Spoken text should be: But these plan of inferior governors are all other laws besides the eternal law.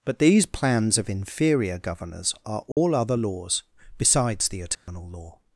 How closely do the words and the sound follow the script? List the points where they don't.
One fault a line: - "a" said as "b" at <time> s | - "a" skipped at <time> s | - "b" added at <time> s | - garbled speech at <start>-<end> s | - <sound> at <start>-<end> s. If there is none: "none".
- "plan" said as "plans" at 0.5 s
- dropout at 2.7-2.8 s
- dropout at 4.7-4.9 s